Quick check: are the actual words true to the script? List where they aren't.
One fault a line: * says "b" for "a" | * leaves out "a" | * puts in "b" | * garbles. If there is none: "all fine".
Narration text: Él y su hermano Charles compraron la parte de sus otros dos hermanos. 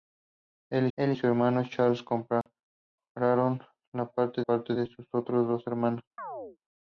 * puts in "él"
* puts in "parte"